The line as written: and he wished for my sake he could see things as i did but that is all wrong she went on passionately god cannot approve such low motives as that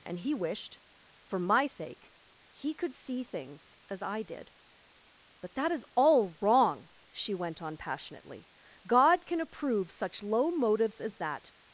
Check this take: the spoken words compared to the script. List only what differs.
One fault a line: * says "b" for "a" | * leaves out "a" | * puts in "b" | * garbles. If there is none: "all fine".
* says "can" for "cannot"